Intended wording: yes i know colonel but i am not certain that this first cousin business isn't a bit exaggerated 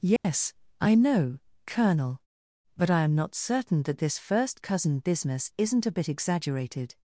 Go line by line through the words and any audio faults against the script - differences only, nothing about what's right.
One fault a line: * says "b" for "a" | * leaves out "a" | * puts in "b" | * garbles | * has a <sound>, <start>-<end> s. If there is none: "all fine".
* has a dropout, 0.2-0.2 s